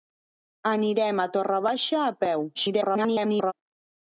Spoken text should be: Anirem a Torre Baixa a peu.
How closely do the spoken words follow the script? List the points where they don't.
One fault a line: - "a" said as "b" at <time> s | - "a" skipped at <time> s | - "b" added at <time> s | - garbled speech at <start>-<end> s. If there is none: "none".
- garbled speech at 2.5-3.5 s